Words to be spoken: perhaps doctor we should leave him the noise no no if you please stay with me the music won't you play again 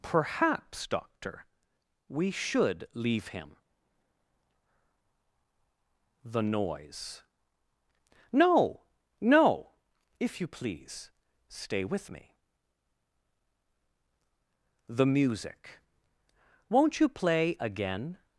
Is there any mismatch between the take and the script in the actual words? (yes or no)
no